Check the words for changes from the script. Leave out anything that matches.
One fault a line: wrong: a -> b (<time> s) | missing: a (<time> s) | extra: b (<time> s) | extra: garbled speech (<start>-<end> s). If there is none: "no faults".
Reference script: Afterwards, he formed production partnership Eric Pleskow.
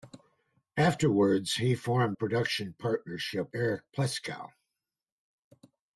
no faults